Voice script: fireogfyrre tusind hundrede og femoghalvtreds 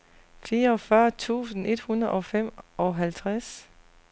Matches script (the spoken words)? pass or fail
fail